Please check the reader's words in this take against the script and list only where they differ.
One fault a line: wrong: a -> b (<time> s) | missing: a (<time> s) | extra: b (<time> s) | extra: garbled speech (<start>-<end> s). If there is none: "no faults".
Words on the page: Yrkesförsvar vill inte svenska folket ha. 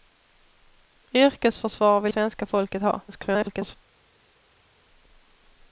missing: inte (2.1 s)
extra: garbled speech (3.1-3.8 s)